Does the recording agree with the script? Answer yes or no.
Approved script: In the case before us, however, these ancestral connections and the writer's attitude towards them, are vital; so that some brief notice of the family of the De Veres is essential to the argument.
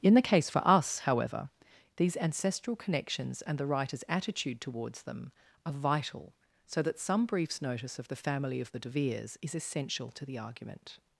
no